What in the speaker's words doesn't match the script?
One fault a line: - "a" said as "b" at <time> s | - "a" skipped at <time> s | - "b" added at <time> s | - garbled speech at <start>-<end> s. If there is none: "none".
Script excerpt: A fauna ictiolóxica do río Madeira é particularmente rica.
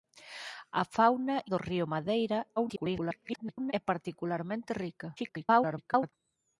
- "ictiolóxica" skipped at 1.4 s
- garbled speech at 2.6-3.7 s
- garbled speech at 5.2-6.1 s